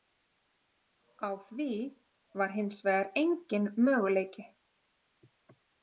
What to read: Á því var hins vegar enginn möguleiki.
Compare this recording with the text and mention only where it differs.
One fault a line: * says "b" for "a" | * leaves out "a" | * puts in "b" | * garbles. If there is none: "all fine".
all fine